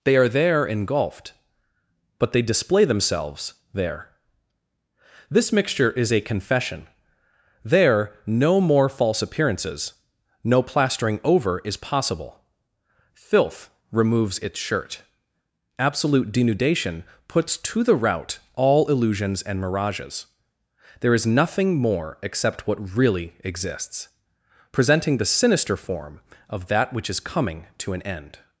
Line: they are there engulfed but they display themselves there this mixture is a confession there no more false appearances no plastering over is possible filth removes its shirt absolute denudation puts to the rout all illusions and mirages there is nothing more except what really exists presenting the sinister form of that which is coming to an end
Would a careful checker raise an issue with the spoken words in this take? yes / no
no